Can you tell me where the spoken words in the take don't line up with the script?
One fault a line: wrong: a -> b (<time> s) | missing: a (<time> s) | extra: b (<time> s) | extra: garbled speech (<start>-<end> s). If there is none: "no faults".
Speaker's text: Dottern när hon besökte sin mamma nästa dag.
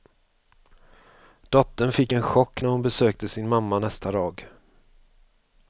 extra: fick en chock (1.9 s)